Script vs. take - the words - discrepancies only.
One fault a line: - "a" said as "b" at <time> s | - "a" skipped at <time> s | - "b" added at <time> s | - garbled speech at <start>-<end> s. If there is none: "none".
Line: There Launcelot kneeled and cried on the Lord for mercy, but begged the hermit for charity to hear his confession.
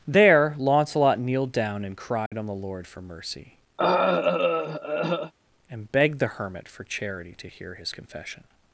- "down" added at 1.5 s
- "but" said as "and" at 5.7 s